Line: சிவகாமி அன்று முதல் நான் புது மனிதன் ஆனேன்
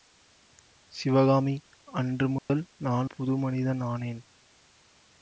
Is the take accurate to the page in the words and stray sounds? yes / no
no